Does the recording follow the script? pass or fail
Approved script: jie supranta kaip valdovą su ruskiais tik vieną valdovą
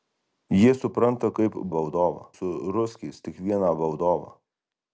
pass